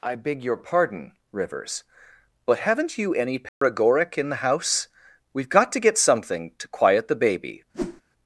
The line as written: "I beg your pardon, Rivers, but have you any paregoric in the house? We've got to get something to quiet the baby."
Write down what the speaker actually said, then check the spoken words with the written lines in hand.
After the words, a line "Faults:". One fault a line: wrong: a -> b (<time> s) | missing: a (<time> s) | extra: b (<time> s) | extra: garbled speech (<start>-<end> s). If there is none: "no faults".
"I beg your pardon, Rivers, but haven't you any paregoric in the house? We've got to get something to quiet the baby."
Faults:
wrong: have -> haven't (2.6 s)